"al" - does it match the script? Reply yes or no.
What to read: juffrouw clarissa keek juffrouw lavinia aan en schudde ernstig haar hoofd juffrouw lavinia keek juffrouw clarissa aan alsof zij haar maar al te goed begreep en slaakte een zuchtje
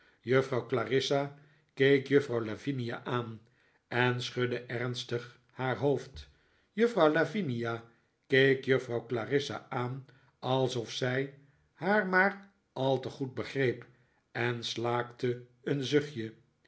yes